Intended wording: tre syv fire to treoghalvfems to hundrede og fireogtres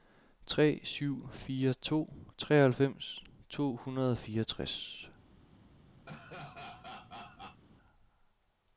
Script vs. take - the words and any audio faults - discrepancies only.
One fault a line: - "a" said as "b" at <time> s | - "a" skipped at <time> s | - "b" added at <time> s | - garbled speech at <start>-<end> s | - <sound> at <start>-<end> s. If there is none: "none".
- laugh at 6.1-7.6 s